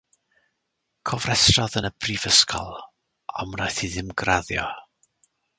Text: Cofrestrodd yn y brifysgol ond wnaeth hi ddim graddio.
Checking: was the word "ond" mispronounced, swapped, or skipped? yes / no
no